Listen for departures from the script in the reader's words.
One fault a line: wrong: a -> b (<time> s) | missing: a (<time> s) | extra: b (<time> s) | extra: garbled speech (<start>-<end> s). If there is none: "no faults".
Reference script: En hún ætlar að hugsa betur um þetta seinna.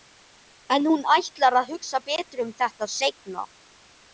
no faults